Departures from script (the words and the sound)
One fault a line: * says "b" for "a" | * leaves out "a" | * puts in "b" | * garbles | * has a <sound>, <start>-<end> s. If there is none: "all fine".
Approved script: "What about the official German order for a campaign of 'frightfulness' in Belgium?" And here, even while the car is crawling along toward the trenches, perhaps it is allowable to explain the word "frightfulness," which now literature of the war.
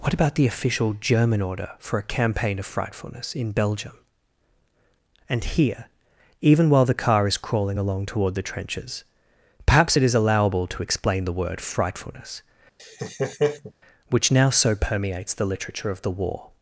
* has a laugh, 12.8-13.7 s
* puts in "so permeates the"